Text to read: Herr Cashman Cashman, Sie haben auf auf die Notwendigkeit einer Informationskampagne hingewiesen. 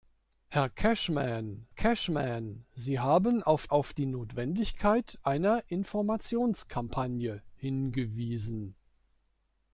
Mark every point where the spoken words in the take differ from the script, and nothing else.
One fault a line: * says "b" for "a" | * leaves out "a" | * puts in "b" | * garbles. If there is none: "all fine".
all fine